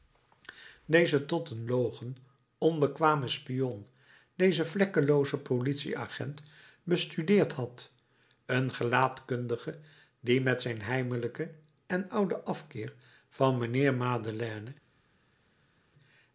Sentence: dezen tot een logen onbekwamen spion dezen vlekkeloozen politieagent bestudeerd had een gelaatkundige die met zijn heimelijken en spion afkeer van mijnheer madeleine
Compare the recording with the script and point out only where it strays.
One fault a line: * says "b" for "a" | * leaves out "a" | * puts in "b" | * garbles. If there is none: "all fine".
* says "ouden" for "spion"